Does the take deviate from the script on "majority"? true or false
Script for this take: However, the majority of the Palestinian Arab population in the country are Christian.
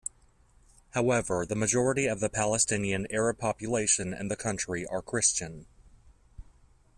false